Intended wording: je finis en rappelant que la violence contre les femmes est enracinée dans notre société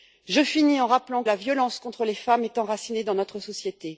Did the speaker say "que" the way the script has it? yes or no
no